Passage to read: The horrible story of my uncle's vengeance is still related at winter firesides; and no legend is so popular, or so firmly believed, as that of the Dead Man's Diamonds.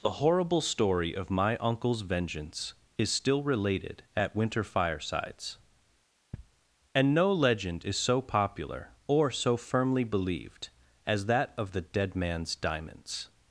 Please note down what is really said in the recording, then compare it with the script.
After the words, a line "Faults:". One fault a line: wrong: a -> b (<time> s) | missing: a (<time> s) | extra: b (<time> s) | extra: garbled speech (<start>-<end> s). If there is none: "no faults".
The horrible story of my uncle's vengeance is still related at winter firesides; and no legend is so popular, or so firmly believed, as that of the Dead Man's Diamonds.
Faults:
no faults